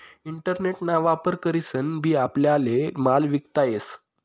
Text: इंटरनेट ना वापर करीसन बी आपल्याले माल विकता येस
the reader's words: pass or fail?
pass